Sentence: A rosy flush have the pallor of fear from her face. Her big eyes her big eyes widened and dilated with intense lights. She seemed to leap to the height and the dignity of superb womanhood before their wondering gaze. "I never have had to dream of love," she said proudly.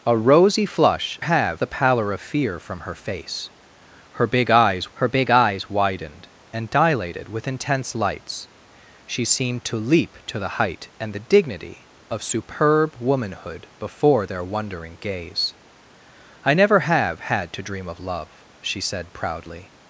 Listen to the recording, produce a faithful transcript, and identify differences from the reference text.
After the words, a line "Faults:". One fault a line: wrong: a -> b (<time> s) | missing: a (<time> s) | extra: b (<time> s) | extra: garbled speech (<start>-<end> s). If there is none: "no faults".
A rosy flush have the pallor of fear from her face. Her big eyes her big eyes widened and dilated with intense lights. She seemed to leap to the height and the dignity of superb womanhood before their wondering gaze. "I never have had to dream of love," she said proudly.
Faults:
no faults